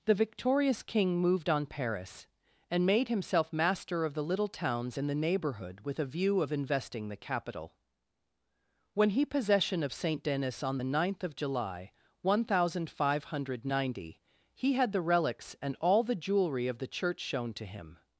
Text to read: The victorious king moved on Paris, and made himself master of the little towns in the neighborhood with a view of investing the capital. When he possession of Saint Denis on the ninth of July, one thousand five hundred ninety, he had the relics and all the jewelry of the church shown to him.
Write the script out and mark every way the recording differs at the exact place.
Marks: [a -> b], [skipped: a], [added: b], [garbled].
The victorious king moved on Paris, and made himself master of the little towns in the neighborhood with a view of investing the capital. When he possession of Saint Denis on the ninth of July, one thousand five hundred ninety, he had the relics and all the jewelry of the church shown to him.